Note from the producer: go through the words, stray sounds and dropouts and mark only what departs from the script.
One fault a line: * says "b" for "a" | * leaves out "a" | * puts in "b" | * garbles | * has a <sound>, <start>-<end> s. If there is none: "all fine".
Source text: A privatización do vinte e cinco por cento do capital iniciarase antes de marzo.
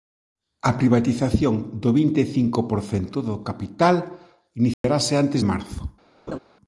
* has a dropout, 4.7-4.8 s
* leaves out "de"
* has a laugh, 6.3-6.4 s